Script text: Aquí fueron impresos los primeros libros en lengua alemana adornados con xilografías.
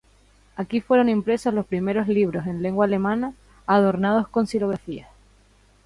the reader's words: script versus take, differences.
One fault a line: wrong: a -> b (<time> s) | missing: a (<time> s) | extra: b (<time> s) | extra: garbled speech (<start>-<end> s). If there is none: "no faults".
no faults